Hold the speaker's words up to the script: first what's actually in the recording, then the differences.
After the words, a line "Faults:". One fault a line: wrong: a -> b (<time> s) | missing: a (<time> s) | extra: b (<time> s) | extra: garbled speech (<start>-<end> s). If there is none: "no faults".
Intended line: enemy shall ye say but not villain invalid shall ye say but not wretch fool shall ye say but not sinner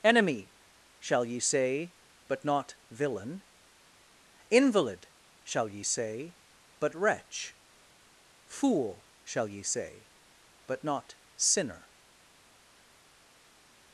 enemy shall ye say but not villain invalid shall ye say but wretch fool shall ye say but not sinner
Faults:
missing: not (7.0 s)